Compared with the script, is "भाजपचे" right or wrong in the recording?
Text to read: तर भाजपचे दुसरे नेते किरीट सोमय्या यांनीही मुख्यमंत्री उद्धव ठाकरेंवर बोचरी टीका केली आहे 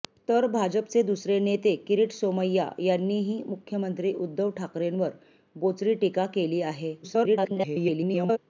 right